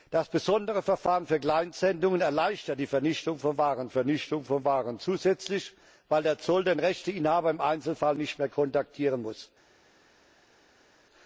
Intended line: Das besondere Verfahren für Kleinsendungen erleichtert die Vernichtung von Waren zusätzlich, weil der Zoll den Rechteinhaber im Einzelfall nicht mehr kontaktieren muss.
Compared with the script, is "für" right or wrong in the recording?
right